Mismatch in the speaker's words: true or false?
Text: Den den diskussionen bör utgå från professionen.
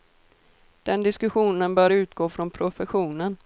true